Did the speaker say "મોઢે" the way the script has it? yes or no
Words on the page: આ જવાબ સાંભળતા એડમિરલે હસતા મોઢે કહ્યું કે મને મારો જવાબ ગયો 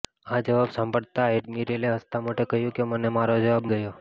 yes